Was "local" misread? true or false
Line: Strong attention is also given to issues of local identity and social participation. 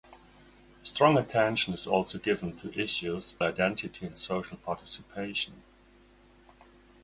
true